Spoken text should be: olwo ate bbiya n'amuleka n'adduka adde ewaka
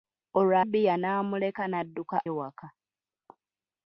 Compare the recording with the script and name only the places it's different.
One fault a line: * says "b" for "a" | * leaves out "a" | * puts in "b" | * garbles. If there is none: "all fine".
* leaves out "ate"
* leaves out "adde"